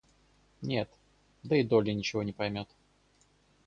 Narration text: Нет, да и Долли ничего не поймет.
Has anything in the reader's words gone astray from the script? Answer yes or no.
no